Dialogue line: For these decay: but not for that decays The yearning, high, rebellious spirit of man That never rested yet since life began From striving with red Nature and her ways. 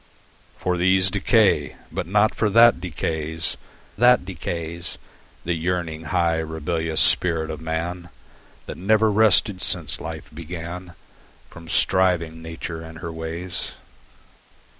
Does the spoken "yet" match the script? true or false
false